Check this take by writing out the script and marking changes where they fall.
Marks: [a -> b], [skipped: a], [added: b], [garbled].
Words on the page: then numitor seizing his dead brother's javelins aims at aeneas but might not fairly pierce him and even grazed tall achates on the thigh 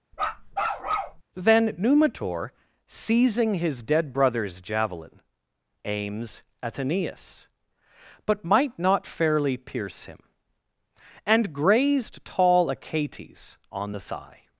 then numitor seizing his dead brother's [javelins -> javelin] aims at aeneas but might not fairly pierce him and [skipped: even] grazed tall achates on the thigh